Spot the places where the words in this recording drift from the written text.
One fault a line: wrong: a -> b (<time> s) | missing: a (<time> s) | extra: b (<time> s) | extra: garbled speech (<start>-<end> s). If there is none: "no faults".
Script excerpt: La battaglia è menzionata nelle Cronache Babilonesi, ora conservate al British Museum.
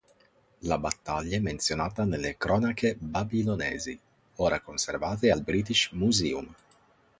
no faults